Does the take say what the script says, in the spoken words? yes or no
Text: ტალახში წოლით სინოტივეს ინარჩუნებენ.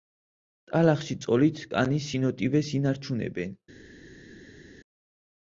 no